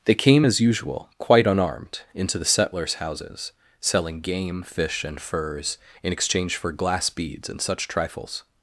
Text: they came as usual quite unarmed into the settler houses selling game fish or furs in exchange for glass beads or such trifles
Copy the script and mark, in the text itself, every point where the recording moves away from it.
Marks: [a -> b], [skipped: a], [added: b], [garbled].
they came as usual quite unarmed into the [settler -> settlers] houses selling game fish [or -> and] furs in exchange for glass beads [or -> and] such trifles